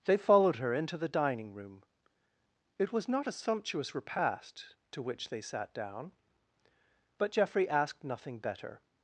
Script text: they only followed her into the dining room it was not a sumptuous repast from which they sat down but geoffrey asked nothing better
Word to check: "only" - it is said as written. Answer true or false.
false